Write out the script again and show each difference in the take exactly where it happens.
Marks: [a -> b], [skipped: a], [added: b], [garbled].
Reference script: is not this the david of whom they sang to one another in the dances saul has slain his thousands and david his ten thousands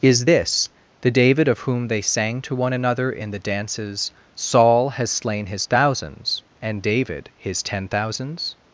is [skipped: not] this the david of whom they sang to one another in the dances saul has slain his thousands and david his ten thousands